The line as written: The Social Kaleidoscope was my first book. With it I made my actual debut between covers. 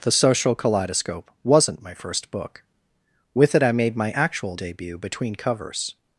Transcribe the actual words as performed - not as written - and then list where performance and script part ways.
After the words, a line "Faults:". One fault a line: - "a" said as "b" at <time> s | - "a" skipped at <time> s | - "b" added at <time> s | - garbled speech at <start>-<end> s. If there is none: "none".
The Social Kaleidoscope wasn't my first book. With it I made my actual debut between covers.
Faults:
- "was" said as "wasn't" at 1.4 s